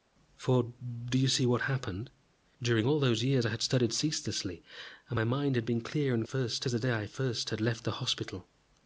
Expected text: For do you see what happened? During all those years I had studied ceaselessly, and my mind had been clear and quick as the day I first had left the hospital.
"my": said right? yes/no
yes